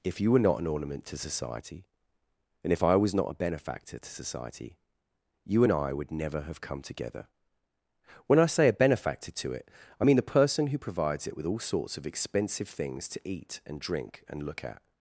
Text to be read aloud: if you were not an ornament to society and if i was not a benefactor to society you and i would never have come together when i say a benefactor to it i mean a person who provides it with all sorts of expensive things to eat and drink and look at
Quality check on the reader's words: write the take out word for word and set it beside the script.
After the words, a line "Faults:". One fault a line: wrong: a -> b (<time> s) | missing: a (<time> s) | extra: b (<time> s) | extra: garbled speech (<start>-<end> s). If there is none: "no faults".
if you were not an ornament to society and if i was not a benefactor to society you and i would never have come together when i say a benefactor to it i mean the person who provides it with all sorts of expensive things to eat and drink and look at
Faults:
wrong: a -> the (10.2 s)